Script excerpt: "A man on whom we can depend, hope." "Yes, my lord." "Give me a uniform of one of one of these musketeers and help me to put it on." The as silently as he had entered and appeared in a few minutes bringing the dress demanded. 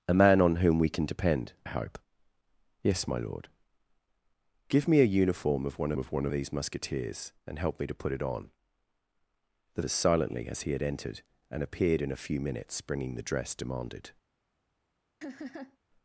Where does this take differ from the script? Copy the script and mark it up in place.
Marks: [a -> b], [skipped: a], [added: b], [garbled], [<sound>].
"A man on whom we can depend, hope." "Yes, my lord." "Give me a uniform of one of one of these musketeers and help me to put it on." The as silently as he had entered and appeared in a few minutes bringing the dress demanded. [laugh]